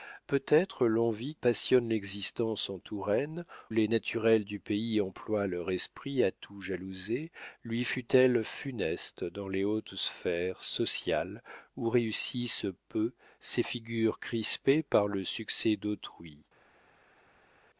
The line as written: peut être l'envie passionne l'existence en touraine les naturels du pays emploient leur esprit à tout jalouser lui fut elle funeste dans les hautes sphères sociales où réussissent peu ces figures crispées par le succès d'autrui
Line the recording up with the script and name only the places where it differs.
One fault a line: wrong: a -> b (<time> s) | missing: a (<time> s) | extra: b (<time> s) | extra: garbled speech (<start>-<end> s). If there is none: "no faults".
no faults